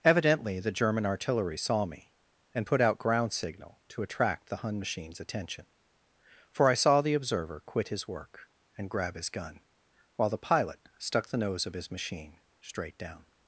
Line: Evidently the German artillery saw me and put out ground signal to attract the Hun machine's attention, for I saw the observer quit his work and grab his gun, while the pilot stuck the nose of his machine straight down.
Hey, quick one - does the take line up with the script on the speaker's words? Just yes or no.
yes